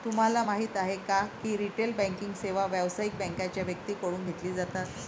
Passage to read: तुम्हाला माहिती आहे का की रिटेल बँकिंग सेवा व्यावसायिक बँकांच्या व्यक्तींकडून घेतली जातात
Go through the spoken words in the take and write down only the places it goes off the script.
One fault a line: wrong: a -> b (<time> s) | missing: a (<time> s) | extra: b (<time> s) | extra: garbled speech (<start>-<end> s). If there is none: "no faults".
no faults